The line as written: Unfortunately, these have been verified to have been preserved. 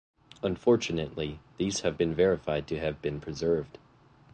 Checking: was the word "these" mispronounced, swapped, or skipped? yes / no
no